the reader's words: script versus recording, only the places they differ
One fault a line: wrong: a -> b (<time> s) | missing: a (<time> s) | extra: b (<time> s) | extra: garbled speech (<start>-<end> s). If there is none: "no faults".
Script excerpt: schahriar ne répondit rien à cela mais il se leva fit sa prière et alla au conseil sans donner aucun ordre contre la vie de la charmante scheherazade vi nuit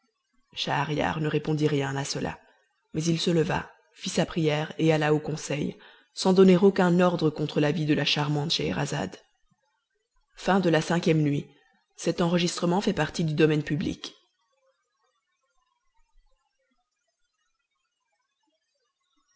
no faults